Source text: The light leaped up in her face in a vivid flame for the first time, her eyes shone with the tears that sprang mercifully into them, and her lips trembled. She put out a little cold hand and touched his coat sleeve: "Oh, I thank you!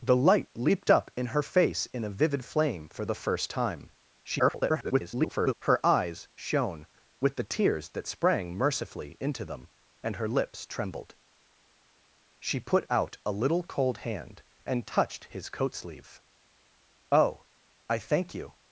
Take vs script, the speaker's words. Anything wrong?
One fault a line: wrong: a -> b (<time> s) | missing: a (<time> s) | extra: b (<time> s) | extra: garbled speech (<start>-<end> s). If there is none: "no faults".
extra: garbled speech (4.2-5.5 s)